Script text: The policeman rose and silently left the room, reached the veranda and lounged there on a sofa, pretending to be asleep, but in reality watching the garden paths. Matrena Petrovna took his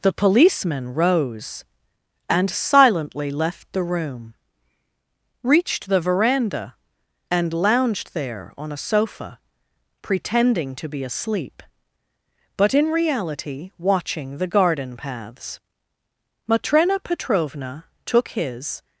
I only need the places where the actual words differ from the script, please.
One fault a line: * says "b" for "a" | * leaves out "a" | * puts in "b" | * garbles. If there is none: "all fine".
all fine